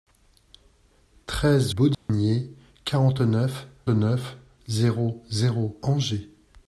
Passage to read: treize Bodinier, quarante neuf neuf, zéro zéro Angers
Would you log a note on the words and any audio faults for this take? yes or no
yes